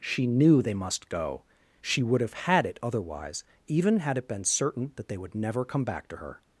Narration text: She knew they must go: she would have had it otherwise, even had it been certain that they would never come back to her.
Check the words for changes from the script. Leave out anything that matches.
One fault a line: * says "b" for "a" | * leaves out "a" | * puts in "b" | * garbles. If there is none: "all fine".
all fine